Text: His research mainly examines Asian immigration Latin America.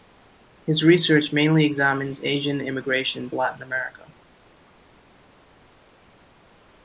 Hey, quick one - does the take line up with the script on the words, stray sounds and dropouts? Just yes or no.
yes